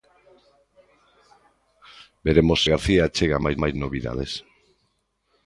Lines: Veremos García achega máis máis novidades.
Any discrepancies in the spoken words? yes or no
no